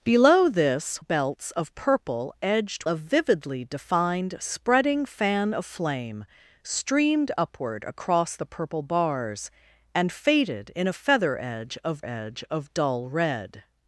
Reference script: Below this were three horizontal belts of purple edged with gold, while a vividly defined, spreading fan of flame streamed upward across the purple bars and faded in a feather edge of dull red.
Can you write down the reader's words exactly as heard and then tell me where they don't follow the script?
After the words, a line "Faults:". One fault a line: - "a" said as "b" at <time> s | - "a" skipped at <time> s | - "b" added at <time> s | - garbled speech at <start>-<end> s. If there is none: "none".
Below this belts of purple edged a vividly defined, spreading fan of flame streamed upward across the purple bars and faded in a feather edge of edge of dull red.
Faults:
- "were three horizontal" skipped at 1.0 s
- "with gold while" skipped at 2.8 s
- "edge of" added at 12.0 s